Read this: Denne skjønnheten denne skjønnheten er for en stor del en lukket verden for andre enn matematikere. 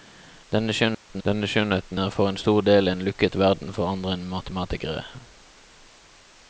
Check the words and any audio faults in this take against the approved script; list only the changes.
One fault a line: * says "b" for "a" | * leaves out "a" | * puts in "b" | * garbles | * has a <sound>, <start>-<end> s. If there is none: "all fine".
* has a dropout, 0.9-1.1 s